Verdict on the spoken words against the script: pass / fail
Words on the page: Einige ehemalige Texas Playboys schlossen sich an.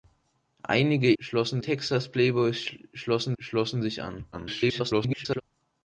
fail